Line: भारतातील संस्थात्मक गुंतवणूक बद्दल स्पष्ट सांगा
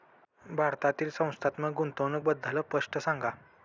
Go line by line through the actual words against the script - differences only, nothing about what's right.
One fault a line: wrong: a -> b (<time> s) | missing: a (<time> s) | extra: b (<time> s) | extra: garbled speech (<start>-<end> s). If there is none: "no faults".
no faults